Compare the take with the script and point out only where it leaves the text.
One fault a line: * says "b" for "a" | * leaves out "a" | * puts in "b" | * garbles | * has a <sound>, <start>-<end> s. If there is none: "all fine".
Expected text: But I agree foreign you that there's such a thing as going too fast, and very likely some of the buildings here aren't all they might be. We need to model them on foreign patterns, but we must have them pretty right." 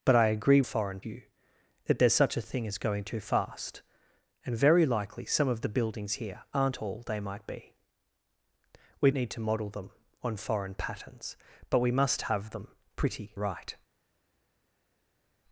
all fine